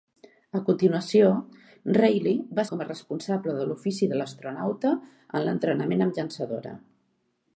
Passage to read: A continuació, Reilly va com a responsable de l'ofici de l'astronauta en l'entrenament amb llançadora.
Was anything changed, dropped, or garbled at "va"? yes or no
no